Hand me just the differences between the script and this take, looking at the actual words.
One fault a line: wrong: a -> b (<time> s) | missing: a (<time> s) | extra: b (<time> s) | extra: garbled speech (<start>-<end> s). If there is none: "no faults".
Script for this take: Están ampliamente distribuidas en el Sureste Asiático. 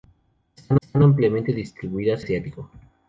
extra: están (0.8 s)
missing: en el Sureste (2.2 s)